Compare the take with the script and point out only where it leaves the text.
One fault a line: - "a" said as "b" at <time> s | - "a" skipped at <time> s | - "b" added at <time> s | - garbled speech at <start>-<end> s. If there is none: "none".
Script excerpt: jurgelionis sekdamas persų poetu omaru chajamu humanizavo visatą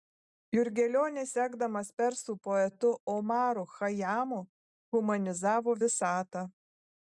none